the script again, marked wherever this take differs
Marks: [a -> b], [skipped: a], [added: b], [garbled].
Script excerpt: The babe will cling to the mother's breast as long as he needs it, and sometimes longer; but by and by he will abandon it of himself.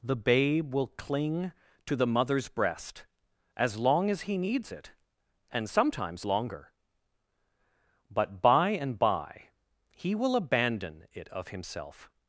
The babe will cling to the mother's breast as long as he needs it, and sometimes longer; but by and by he will abandon it of himself.